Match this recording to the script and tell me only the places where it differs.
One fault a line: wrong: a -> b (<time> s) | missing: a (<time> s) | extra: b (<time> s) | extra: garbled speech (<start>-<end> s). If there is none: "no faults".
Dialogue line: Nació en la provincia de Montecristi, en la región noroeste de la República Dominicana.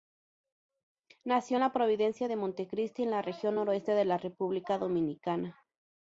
no faults